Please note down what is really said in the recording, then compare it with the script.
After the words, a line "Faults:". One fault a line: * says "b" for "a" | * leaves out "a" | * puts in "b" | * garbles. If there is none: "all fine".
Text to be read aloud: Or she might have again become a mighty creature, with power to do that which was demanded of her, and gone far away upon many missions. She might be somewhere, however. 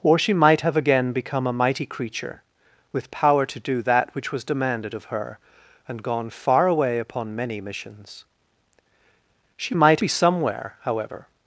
Or she might have again become a mighty creature, with power to do that which was demanded of her, and gone far away upon many missions. She might be somewhere, however.
Faults:
all fine